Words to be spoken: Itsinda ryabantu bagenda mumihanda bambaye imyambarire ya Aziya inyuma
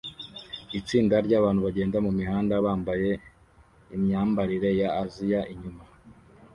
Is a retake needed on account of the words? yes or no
no